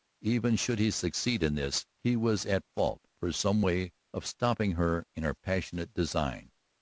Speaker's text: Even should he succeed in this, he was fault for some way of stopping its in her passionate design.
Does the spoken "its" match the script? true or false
false